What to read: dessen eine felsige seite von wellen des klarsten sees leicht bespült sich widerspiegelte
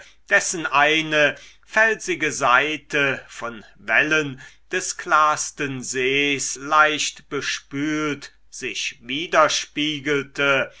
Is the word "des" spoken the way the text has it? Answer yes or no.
yes